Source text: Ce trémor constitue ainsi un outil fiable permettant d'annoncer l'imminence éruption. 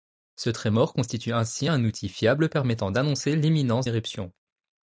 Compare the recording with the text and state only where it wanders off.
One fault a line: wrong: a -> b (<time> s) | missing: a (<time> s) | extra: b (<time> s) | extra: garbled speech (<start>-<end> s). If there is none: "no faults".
no faults